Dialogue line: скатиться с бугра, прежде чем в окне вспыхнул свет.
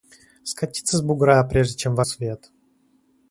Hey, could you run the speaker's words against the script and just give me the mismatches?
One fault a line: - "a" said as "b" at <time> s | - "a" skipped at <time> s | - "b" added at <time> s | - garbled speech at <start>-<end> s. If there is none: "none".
- "окне вспыхнул" skipped at 2.0 s